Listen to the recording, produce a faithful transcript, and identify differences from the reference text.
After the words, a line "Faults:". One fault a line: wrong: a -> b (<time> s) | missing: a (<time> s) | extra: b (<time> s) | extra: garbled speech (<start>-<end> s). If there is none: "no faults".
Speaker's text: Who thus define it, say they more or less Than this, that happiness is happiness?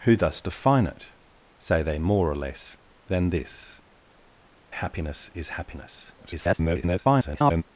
Who thus define it, say they more or less Than this, happiness is happiness? [garbled]
Faults:
missing: that (3.8 s)
extra: garbled speech (6.2-7.6 s)